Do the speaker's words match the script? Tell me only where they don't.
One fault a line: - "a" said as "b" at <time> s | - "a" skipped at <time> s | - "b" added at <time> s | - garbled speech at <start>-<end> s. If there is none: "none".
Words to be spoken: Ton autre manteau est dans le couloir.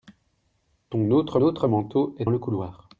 - "autre" added at 1.4 s
- "dans" skipped at 2.3 s